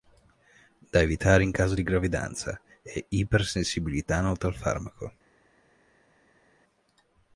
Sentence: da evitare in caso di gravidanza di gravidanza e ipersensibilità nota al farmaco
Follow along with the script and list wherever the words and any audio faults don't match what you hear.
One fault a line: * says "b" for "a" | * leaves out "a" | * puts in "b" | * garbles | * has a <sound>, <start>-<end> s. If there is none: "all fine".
* leaves out "di gravidanza"